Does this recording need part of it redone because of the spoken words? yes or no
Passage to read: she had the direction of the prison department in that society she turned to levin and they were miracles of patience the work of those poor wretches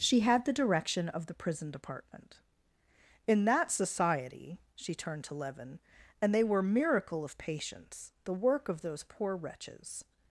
yes